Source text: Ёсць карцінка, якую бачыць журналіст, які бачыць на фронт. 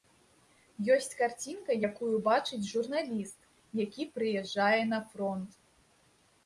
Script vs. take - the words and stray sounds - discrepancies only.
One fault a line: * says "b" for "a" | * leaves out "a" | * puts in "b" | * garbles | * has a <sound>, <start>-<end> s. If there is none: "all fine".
* says "прыязджае" for "бачыць"